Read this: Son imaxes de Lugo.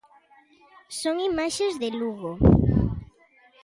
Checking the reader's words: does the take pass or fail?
pass